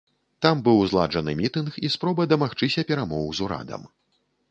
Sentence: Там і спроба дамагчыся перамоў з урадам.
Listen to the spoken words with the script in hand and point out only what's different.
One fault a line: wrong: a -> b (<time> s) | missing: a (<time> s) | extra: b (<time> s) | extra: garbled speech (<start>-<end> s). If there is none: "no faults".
extra: быў зладжаны мітынг (0.7 s)